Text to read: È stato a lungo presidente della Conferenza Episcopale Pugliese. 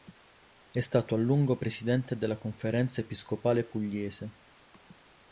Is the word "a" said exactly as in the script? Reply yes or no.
yes